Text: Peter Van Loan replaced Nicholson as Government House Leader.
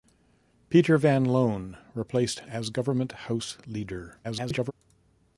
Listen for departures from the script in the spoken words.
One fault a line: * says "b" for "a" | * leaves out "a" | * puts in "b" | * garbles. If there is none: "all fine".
* leaves out "Nicholson"
* garbles